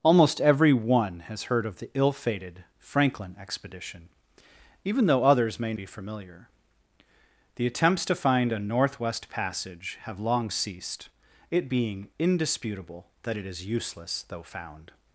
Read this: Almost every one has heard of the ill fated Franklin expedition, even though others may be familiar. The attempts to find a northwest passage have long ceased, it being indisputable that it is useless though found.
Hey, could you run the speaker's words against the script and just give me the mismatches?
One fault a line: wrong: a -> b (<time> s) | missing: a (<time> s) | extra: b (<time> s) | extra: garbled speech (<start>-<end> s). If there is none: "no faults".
no faults